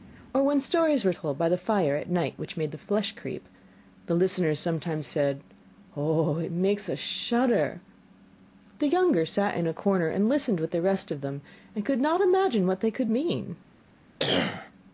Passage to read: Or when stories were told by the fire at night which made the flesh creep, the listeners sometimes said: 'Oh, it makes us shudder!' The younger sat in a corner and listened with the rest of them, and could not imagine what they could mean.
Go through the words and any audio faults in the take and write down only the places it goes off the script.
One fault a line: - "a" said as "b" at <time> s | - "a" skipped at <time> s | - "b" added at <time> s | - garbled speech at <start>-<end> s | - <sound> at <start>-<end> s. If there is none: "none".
- cough at 14.2-14.7 s